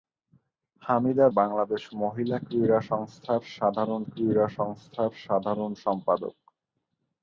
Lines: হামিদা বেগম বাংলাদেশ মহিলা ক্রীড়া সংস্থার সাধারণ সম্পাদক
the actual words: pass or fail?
fail